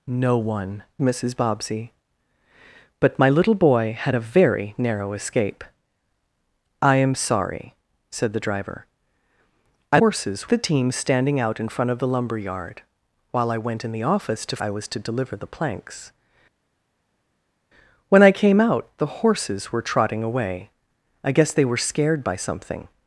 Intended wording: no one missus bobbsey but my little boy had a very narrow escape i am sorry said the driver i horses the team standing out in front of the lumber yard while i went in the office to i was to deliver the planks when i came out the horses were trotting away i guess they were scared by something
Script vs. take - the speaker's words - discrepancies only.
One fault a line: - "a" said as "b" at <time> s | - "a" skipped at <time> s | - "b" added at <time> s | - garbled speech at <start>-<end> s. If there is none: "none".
none